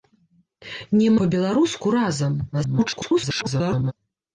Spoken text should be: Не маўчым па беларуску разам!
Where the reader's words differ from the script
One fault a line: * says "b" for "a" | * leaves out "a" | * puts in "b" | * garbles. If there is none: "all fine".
* leaves out "маўчым"
* garbles